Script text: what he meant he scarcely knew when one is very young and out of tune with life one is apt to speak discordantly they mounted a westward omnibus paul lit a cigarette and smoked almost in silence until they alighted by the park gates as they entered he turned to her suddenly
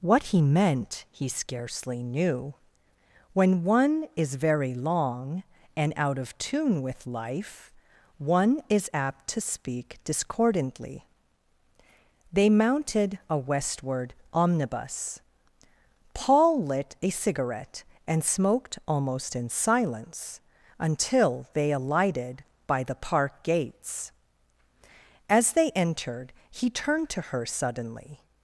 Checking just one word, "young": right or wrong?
wrong